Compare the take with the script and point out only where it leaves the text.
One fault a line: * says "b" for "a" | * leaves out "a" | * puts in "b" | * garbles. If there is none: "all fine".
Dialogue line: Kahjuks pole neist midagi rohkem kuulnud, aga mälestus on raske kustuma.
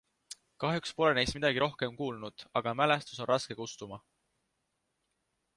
all fine